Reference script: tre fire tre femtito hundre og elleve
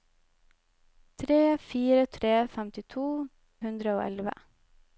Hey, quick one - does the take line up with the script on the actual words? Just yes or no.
yes